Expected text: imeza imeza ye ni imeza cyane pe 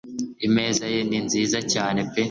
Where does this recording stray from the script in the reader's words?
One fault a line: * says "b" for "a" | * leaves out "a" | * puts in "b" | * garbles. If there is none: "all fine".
* leaves out "imeza"
* says "nziza" for "imeza"